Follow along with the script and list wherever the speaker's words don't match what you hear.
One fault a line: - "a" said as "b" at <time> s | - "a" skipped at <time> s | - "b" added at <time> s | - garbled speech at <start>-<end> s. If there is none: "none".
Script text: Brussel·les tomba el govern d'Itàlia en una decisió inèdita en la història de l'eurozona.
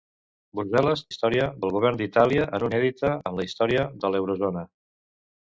- "tomba" said as "història" at 1.1 s
- "una decisió" skipped at 2.7 s